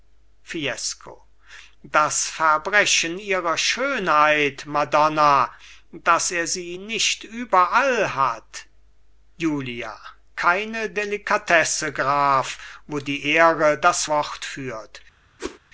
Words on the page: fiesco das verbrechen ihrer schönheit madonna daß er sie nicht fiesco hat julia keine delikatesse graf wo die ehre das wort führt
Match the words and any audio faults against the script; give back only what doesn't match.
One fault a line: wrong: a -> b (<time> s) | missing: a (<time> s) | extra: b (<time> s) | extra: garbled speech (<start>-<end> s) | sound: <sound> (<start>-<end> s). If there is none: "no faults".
wrong: fiesco -> überall (7.2 s)
sound: whoosh (15.4-15.6 s)